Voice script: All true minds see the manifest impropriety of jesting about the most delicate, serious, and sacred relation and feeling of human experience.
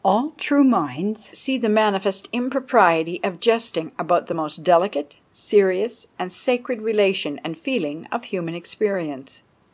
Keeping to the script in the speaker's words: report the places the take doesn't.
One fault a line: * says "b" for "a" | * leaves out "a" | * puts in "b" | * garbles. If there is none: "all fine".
all fine